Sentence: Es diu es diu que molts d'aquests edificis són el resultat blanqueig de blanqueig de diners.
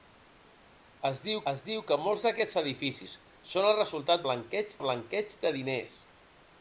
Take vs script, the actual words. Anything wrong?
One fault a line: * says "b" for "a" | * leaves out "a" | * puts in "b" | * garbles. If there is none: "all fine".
all fine